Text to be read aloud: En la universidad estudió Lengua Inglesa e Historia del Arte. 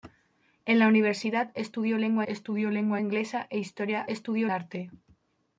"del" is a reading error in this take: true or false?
true